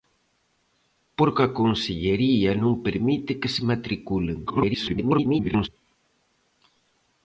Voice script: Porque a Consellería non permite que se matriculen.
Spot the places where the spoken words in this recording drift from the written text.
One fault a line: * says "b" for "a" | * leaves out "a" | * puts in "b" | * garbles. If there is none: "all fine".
* garbles